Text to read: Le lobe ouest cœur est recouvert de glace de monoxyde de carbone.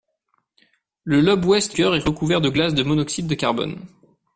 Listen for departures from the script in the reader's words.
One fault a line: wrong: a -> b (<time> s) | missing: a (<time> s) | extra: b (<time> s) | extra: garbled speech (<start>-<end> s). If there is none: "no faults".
no faults